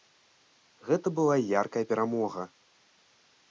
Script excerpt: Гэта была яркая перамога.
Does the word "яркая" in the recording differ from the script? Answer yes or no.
no